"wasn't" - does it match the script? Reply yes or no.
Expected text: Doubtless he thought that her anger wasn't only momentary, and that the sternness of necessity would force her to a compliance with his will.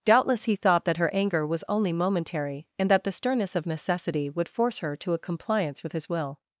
no